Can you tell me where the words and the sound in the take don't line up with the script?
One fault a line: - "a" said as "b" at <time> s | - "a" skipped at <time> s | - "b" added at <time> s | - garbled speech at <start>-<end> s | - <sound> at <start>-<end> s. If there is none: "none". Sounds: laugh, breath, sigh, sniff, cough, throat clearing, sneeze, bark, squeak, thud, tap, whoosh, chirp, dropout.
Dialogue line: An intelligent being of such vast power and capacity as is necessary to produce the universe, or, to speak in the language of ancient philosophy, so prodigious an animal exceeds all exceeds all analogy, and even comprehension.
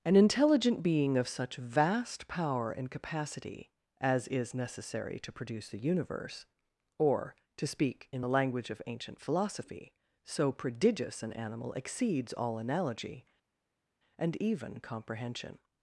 - "exceeds all" skipped at 12.6 s